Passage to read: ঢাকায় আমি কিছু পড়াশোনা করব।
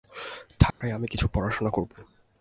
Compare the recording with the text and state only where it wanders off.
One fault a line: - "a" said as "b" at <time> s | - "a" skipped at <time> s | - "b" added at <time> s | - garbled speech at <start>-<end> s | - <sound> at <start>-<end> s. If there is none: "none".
- dropout at 0.7-0.8 s